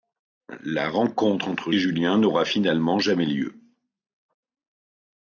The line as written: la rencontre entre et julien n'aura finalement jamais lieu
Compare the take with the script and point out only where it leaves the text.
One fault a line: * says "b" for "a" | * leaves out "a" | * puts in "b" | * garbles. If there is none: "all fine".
all fine